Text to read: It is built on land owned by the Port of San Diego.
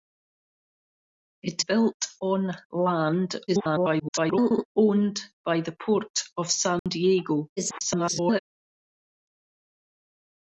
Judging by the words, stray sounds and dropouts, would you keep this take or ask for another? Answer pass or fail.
fail